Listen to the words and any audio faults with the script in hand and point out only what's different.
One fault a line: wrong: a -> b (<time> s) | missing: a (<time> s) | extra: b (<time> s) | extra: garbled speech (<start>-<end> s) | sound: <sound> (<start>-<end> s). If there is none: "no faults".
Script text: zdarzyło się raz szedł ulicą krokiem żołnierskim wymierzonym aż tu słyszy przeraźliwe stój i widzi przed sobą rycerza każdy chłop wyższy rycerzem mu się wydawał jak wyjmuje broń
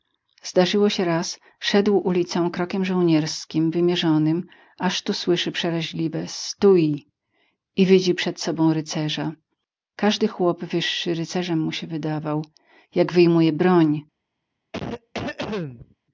sound: cough (14.7-15.9 s)